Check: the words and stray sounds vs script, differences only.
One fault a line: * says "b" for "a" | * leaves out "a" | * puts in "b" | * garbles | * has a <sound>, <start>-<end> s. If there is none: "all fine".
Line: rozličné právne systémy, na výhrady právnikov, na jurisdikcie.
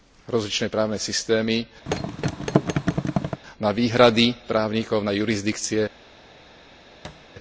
* has a thud, 1.9-3.4 s
* has a thud, 7.0-7.3 s